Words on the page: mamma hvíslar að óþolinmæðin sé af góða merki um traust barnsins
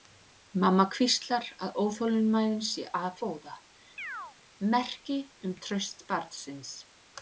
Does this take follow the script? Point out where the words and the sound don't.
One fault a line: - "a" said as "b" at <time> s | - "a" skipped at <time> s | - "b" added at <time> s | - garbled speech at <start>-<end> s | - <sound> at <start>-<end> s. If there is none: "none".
- chirp at 4.0-4.4 s